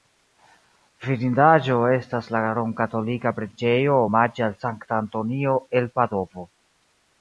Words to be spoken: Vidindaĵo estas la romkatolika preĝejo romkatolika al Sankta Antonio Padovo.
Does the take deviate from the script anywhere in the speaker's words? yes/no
yes